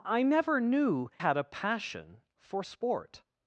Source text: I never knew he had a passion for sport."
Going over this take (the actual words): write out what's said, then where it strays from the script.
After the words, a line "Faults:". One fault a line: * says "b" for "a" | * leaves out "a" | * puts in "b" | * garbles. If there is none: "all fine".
I never knew had a passion for sport."
Faults:
* leaves out "he"